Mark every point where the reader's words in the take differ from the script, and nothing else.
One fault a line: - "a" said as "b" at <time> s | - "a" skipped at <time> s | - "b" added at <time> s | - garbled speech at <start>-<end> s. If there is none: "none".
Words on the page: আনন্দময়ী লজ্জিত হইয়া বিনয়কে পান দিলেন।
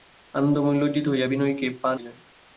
none